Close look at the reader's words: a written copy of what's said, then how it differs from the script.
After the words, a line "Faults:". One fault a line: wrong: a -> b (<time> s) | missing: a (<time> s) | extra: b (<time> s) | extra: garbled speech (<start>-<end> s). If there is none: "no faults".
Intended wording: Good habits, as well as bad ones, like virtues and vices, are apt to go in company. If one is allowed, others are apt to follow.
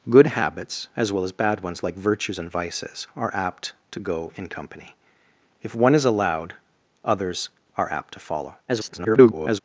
Good habits, as well as bad ones, like virtues and vices, are apt to go in company. If one is allowed, others are apt to follow. [garbled]
Faults:
extra: garbled speech (8.7-9.6 s)